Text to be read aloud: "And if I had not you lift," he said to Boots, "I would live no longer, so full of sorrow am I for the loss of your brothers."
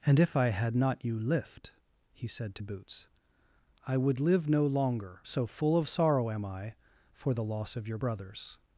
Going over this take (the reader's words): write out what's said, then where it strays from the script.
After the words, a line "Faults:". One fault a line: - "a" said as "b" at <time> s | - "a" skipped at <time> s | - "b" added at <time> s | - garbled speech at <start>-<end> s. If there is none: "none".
"And if I had not you lift," he said to Boots, "I would live no longer, so full of sorrow am I for the loss of your brothers."
Faults:
none